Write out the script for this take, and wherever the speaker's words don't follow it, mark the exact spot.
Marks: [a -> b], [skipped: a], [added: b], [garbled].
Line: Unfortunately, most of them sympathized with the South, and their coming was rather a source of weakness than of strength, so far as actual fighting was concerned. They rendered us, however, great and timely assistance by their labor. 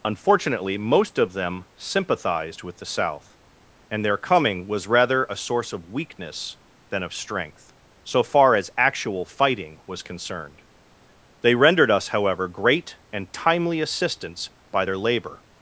Unfortunately, most of them sympathized with the South, and their coming was rather a source of weakness than of strength, so far as actual fighting was concerned. They rendered us, however, great and timely assistance by their labor.